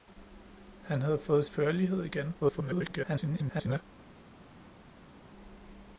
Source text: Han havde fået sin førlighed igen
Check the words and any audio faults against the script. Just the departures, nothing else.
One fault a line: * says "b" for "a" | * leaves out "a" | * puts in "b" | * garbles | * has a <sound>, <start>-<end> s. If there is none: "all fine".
* leaves out "sin"
* garbles